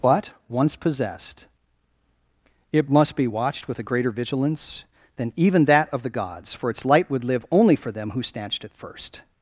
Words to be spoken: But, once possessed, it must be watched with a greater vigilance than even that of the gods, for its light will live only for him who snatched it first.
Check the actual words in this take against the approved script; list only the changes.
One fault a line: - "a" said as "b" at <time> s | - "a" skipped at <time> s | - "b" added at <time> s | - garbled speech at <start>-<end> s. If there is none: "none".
- "will" said as "would" at 7.1 s
- "him" said as "them" at 7.9 s